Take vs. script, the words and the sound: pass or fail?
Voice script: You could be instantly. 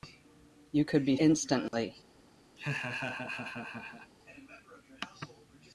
fail